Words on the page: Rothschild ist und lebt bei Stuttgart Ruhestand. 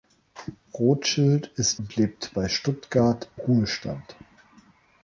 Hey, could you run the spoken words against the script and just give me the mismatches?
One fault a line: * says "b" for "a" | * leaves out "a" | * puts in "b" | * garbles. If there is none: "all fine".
all fine